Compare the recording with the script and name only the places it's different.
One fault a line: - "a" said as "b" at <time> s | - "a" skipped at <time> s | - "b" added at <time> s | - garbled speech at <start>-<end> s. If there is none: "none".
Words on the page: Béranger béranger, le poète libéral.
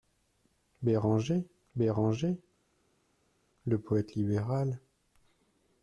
none